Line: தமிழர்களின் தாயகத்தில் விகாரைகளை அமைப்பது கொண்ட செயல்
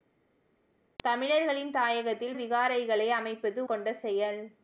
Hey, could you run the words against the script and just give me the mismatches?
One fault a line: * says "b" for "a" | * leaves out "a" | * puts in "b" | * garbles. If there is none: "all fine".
all fine